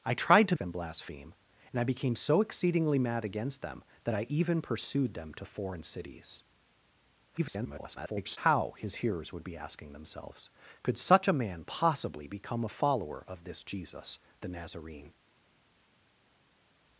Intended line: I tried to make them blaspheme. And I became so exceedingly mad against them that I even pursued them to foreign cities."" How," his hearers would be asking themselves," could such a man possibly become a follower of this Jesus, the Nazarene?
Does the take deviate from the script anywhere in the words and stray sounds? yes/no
yes